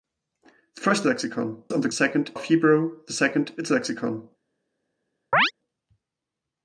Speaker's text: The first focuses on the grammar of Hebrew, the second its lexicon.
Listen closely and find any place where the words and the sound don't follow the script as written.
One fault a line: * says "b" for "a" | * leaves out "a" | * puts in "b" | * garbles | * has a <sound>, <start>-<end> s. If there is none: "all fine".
* says "lexicon" for "focuses"
* says "second" for "grammar"
* has a chirp, 5.3-5.5 s